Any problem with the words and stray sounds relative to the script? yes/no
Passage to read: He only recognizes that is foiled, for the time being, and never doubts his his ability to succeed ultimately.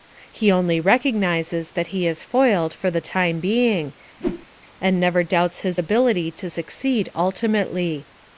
yes